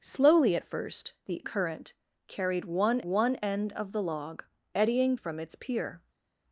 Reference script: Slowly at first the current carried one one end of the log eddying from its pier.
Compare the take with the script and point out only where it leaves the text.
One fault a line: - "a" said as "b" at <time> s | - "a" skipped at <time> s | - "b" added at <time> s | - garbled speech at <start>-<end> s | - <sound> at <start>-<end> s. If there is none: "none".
none